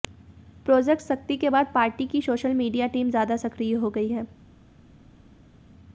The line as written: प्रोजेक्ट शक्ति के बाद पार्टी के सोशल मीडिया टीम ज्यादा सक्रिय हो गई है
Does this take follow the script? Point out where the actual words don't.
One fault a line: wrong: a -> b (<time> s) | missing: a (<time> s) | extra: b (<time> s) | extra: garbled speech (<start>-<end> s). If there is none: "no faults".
wrong: के -> की (2.1 s)